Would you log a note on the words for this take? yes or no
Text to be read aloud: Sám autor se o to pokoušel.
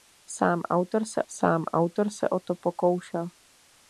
yes